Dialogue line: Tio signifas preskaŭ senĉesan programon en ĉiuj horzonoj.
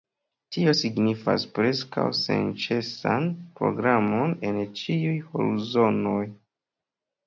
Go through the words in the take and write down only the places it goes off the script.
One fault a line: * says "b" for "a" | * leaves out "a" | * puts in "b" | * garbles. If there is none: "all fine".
all fine